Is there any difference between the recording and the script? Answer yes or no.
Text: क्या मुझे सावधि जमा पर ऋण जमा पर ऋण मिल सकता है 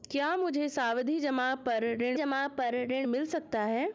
no